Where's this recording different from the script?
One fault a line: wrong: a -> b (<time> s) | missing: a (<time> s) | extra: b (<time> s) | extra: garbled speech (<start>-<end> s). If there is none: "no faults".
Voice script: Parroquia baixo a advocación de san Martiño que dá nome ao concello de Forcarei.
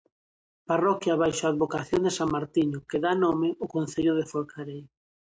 no faults